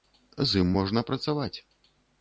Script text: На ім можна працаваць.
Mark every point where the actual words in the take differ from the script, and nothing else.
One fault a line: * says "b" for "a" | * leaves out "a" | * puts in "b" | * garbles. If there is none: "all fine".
* says "З" for "На"